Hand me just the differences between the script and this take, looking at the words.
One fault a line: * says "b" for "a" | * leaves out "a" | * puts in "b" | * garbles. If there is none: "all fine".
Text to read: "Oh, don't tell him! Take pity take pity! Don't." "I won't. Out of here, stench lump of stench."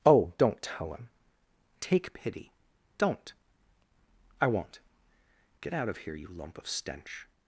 * leaves out "take pity"
* puts in "Get"
* says "you" for "stench"